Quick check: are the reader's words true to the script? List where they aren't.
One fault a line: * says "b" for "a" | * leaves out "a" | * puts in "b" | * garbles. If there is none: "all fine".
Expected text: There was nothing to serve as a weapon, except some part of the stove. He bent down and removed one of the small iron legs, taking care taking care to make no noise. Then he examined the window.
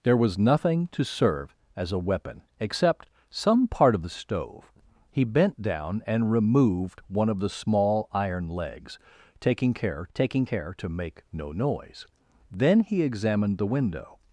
all fine